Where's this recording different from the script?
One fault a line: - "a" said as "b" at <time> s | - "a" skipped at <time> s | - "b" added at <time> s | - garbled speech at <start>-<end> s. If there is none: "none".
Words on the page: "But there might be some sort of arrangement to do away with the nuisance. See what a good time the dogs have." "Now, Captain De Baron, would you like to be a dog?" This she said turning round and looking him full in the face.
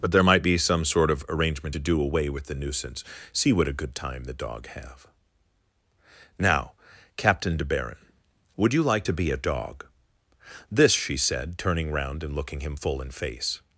- "dogs" said as "dog" at 4.3 s
- "the" skipped at 13.1 s